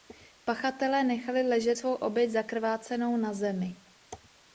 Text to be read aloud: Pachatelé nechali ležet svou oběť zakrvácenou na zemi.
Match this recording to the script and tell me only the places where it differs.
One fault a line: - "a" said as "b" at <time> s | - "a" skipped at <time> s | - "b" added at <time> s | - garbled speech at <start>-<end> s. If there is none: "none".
none